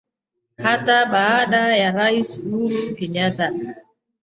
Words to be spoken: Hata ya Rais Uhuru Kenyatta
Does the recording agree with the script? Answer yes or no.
no